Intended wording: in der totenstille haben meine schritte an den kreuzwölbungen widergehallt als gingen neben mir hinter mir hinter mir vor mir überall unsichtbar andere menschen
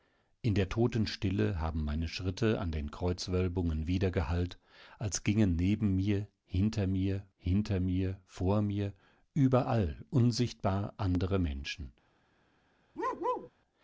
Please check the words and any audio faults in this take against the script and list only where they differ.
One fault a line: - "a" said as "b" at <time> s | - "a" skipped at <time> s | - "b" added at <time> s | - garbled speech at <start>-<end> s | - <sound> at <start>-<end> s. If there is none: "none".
- bark at 13.0-13.5 s